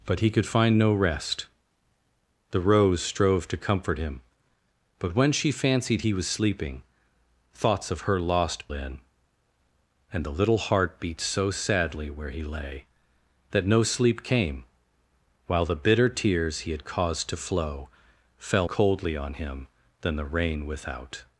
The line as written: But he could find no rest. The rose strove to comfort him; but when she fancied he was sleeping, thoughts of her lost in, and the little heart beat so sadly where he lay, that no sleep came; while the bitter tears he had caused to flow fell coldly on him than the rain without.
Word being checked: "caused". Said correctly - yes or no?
yes